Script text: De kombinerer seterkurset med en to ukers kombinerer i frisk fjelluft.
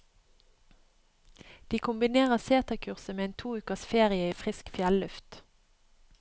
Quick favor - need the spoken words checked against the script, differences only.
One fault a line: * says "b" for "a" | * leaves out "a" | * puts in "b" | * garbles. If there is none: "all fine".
* says "ferie" for "kombinerer"